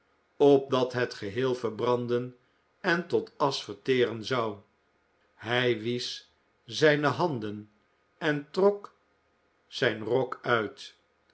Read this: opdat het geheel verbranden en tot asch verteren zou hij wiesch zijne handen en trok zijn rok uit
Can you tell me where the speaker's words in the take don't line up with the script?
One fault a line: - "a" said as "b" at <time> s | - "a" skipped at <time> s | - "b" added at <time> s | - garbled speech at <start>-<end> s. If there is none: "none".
none